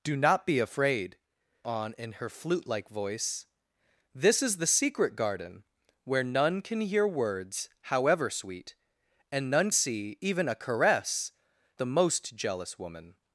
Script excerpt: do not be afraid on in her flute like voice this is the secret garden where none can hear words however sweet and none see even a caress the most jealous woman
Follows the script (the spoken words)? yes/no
yes